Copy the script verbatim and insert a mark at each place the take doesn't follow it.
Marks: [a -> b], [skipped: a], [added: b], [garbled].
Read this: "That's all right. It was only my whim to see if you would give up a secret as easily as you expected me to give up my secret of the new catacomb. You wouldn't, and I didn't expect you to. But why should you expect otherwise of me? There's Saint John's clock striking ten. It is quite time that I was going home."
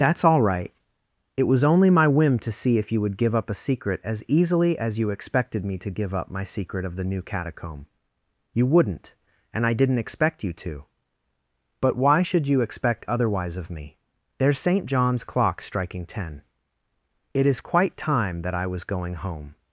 "That's all right. It was only my whim to see if you would give up a secret as easily as you expected me to give up my secret of the new catacomb. You wouldn't, and I didn't expect you to. But why should you expect otherwise of me? There's Saint John's clock striking ten. It is quite time that I was going home."